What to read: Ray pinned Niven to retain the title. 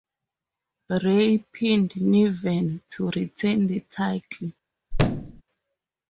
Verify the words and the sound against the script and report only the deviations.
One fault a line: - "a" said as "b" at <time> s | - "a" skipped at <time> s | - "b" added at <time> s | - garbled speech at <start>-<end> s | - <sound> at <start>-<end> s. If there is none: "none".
- thud at 4.9-5.4 s